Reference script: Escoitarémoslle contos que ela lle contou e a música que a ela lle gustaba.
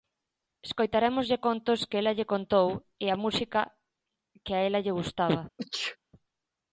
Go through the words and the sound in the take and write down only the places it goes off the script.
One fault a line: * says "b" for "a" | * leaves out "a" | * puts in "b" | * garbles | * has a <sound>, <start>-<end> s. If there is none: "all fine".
* has a sneeze, 5.6-6.0 s